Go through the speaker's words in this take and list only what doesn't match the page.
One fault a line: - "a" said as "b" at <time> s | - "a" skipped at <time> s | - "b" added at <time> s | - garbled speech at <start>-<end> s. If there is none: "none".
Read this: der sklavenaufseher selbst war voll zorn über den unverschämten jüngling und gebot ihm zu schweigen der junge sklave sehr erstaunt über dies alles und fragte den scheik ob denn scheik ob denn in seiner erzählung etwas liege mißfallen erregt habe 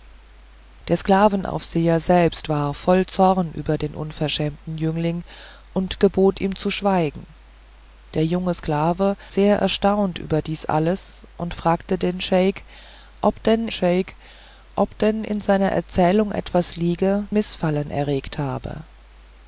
none